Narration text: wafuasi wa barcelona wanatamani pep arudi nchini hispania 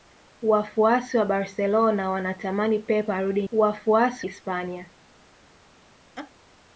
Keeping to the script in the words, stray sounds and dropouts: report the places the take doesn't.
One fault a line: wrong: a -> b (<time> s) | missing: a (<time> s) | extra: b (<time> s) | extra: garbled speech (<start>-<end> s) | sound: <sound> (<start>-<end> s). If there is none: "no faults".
wrong: nchini -> wafuasi (3.5 s)
sound: laugh (6.2-6.3 s)